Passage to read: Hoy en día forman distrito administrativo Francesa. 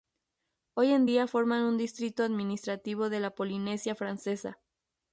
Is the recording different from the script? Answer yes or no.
yes